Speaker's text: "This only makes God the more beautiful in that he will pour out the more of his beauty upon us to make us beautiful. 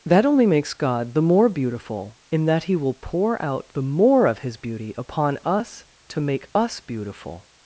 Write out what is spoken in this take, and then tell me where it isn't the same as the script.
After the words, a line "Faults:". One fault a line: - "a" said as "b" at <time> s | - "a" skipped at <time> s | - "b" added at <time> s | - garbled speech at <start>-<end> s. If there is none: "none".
"That only makes God the more beautiful in that he will pour out the more of his beauty upon us to make us beautiful.
Faults:
- "This" said as "That" at 0.0 s